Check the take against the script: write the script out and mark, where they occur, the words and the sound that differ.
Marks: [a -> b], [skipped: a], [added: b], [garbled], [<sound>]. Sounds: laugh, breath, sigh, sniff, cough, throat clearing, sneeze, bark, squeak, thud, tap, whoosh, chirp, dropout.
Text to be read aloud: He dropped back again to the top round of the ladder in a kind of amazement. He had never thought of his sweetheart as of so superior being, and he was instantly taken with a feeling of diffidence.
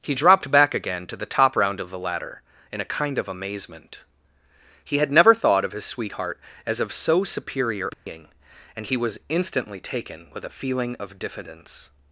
He dropped back again to the top round of the ladder in a kind of amazement. He had never thought of his sweetheart as of so superior being, [dropout] and he was instantly taken with a feeling of diffidence.